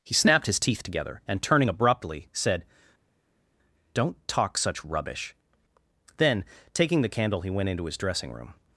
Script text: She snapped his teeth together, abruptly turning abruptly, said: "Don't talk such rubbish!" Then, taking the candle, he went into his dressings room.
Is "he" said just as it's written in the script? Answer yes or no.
yes